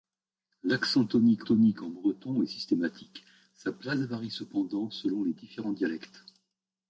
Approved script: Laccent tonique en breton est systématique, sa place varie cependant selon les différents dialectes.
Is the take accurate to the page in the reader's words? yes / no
no